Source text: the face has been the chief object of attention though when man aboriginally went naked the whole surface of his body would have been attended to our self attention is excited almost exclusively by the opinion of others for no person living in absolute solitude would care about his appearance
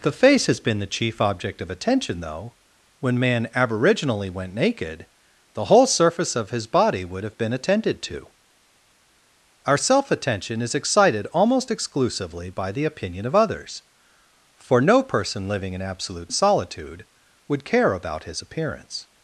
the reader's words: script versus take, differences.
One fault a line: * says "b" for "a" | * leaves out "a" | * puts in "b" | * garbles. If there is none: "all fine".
all fine